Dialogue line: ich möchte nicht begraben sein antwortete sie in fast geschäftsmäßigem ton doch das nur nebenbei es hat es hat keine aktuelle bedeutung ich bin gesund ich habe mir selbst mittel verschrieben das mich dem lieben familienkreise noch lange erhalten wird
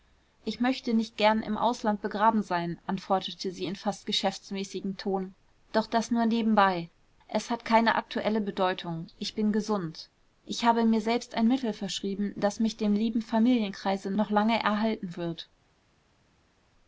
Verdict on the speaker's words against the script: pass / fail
fail